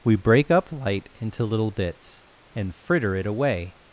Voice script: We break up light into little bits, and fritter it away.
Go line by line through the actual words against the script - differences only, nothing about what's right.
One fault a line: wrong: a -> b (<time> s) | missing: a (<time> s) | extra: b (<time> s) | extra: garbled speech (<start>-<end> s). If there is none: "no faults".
no faults